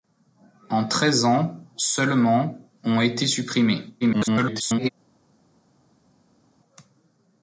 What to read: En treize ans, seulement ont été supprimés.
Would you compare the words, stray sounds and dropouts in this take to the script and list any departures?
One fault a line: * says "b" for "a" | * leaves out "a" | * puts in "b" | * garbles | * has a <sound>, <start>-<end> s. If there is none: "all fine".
* garbles